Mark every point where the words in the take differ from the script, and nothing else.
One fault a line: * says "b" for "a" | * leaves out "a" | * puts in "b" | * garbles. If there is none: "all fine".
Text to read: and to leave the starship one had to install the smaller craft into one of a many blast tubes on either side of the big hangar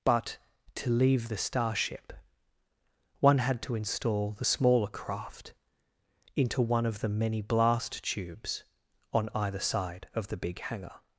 * says "but" for "and"
* says "the" for "a"